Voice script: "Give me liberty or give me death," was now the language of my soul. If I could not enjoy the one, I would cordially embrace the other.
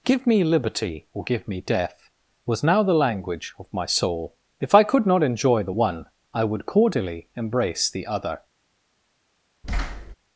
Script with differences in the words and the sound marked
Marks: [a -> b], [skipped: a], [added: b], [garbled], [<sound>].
"Give me liberty or give me death," was now the language of my soul. If I could not enjoy the one, I would cordially embrace the other. [thud]